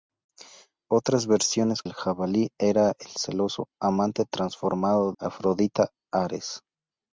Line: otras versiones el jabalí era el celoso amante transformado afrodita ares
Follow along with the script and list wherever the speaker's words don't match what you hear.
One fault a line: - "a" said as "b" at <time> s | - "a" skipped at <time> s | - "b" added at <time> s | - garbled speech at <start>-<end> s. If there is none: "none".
none